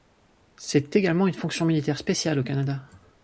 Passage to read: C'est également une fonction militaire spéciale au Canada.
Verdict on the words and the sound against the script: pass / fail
pass